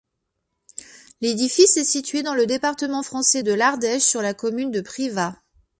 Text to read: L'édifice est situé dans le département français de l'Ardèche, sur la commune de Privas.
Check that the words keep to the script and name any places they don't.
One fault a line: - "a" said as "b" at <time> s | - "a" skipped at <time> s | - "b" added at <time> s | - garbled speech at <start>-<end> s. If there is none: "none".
none